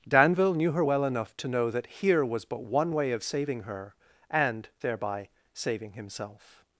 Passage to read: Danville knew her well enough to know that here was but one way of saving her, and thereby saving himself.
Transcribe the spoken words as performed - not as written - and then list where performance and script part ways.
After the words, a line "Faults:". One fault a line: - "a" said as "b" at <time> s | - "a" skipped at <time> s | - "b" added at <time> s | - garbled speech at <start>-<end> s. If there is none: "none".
Danville knew her well enough to know that here was but one way of saving her, and thereby saving himself.
Faults:
none